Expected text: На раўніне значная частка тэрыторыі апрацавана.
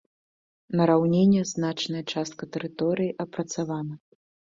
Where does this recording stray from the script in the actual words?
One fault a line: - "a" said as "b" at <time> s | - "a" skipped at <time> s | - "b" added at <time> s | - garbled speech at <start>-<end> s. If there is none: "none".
none